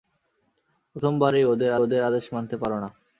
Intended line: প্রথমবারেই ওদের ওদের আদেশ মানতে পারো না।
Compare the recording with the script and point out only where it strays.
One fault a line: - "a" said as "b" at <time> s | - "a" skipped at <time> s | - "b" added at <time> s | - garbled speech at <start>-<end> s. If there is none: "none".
none